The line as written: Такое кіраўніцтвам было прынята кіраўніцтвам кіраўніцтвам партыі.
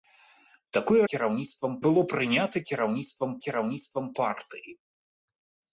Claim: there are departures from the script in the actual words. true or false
false